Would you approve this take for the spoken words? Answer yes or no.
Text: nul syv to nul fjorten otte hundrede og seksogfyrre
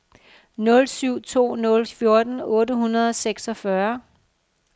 yes